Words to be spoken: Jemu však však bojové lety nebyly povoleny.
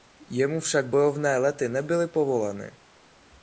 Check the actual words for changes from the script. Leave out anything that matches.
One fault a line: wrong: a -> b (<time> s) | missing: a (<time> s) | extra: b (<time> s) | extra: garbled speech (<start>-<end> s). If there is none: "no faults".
missing: však (0.9 s)